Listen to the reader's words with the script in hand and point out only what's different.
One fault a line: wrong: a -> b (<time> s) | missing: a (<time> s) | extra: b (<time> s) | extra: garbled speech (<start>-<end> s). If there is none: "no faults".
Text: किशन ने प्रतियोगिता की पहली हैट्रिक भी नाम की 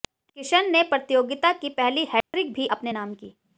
extra: अपने (2.7 s)